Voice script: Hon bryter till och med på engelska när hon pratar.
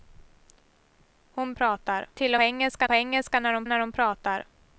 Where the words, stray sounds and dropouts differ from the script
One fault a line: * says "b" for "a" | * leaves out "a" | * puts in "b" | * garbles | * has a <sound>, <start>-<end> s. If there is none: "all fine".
* says "pratar" for "bryter"
* says "engelska" for "med"
* puts in "när hon"